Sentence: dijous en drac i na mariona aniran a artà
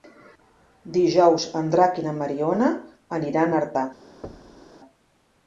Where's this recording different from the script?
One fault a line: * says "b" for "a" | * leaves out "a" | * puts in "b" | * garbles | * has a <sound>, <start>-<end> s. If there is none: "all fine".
* has a thud, 4.2-4.7 s